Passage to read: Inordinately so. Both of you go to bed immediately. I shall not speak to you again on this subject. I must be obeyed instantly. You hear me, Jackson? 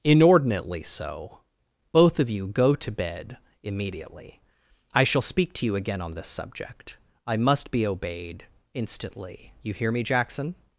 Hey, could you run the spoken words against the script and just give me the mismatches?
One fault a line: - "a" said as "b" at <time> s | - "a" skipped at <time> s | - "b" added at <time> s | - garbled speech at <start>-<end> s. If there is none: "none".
- "not" skipped at 5.2 s